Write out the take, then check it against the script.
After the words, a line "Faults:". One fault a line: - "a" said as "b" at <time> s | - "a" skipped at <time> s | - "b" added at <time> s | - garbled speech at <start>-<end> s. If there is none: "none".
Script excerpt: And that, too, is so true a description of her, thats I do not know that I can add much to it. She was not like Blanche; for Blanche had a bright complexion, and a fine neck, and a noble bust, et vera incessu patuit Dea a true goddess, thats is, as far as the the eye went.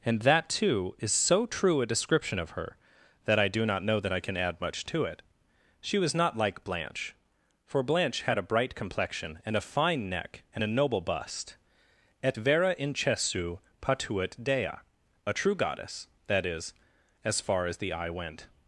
And that, too, is so true a description of her, that I do not know that I can add much to it. She was not like Blanche; for Blanche had a bright complexion, and a fine neck, and a noble bust, et vera incessu patuit Dea a true goddess, that is, as far as the eye went.
Faults:
- "thats" said as "that" at 3.2 s
- "thats" said as "that" at 16.3 s
- "the" skipped at 17.9 s